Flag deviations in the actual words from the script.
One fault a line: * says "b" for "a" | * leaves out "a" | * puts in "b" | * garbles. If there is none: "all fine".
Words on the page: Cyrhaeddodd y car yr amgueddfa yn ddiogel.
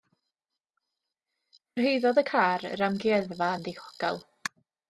all fine